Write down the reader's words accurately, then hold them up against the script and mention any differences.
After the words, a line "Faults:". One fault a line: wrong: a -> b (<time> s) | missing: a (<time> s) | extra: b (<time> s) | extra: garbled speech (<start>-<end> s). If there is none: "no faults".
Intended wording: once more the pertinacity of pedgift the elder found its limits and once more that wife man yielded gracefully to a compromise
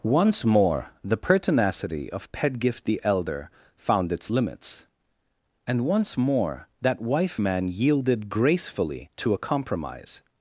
once more the pertinacity of pedgift the elder found its limits and once more that wife man yielded gracefully to a compromise
Faults:
no faults